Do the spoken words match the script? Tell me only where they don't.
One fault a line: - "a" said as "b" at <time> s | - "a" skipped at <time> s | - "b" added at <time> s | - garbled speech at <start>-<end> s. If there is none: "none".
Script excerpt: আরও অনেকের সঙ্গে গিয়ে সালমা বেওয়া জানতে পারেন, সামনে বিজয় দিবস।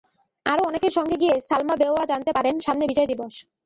none